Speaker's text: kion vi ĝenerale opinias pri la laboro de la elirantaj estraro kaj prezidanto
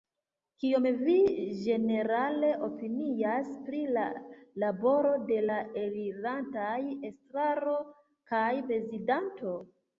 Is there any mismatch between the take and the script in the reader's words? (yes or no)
no